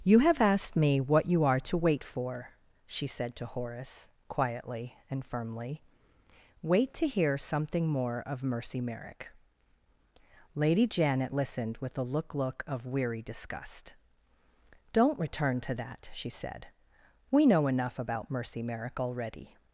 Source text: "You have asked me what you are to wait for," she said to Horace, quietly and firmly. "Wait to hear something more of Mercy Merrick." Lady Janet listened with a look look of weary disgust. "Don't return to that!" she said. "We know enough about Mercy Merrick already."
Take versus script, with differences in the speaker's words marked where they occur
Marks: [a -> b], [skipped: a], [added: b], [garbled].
"You have asked me what you are to wait for," she said to Horace, quietly and firmly. "Wait to hear something more of Mercy Merrick." Lady Janet listened with a look look of weary disgust. "Don't return to that!" she said. "We know enough about Mercy Merrick already."